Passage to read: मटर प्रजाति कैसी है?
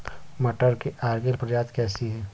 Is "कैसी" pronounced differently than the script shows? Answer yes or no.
no